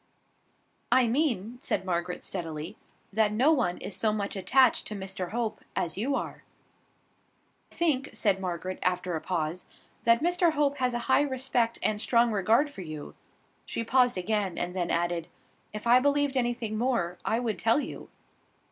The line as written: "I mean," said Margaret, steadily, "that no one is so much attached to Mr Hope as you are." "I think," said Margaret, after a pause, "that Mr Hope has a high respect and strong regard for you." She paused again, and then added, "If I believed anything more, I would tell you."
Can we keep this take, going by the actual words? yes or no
no